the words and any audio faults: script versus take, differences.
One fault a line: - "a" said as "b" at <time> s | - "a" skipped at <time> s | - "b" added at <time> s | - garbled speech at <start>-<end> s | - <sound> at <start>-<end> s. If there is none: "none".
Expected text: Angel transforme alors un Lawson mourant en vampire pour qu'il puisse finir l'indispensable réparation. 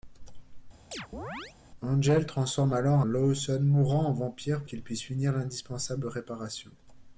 - chirp at 0.9-1.6 s
- "un" skipped at 3.0 s
- "pour" skipped at 4.6 s